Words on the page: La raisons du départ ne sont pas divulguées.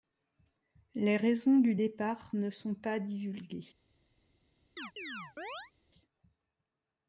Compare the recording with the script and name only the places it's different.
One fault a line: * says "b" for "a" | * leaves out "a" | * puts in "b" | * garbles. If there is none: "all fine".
* says "Les" for "La"